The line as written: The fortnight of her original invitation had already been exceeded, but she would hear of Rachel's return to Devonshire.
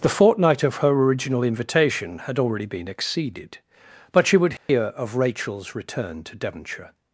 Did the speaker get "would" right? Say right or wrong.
right